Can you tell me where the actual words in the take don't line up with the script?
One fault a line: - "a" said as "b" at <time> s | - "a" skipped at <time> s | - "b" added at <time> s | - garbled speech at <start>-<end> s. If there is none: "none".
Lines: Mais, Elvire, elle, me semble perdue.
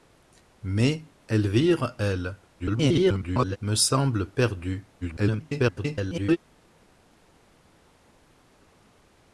- garbled speech at 2.6-3.6 s
- garbled speech at 5.0-6.4 s